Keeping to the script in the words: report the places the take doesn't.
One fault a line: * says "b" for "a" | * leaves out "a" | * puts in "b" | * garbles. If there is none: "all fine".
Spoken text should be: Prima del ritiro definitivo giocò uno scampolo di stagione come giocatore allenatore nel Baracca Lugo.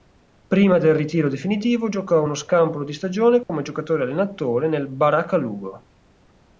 all fine